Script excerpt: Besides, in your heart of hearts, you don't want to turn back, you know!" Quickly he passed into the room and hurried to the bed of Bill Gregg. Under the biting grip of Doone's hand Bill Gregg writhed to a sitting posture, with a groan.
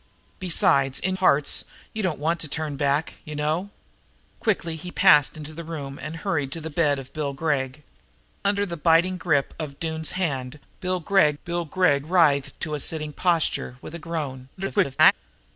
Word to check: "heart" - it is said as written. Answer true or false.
false